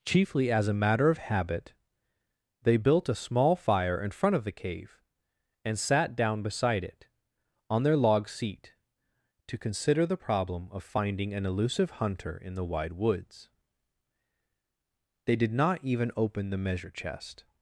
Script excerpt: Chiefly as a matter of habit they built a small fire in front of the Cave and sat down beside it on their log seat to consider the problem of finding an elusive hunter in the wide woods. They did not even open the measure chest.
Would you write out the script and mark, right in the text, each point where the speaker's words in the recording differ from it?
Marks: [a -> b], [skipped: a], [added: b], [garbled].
Chiefly as a matter of habit they built a small fire in front of the Cave and sat down beside it on their log seat to consider the problem of finding an elusive hunter in the wide woods. They did not even open the measure chest.